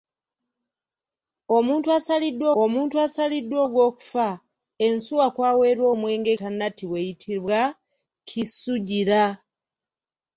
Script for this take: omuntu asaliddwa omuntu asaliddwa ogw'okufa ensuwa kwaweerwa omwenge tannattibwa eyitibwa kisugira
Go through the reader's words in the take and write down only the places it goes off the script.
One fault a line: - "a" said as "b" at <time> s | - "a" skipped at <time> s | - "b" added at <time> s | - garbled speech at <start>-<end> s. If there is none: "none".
none